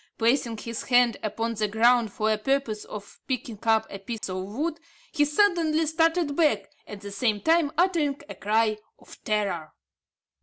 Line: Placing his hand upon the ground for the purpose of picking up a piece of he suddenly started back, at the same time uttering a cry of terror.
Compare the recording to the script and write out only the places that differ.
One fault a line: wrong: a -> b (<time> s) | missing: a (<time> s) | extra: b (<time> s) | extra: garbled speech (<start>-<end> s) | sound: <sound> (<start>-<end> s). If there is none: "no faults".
sound: dropout (4.2-4.2 s)
extra: wood (4.5 s)